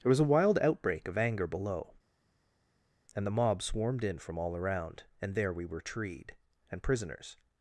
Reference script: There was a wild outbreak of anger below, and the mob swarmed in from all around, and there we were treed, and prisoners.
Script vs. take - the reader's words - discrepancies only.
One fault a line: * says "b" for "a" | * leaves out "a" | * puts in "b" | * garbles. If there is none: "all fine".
all fine